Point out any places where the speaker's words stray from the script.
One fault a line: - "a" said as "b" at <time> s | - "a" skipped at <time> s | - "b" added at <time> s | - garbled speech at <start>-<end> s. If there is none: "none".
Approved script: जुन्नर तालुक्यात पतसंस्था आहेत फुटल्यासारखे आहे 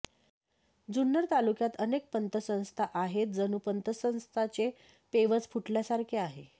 - "अनेक" added at 1.8 s
- "जणू पतसंस्थांचे पेवच" added at 3.3 s